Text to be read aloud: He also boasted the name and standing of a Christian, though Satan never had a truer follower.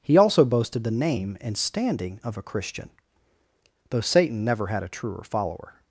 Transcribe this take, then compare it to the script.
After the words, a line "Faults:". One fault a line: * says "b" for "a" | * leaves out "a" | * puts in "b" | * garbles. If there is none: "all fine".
He also boasted the name and standing of a Christian, though Satan never had a truer follower.
Faults:
all fine